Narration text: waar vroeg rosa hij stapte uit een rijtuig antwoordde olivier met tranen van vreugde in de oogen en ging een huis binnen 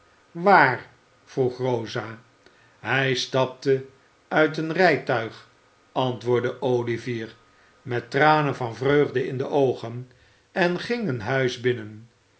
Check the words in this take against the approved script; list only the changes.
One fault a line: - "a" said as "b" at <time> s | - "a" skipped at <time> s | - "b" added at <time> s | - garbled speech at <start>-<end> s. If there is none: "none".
none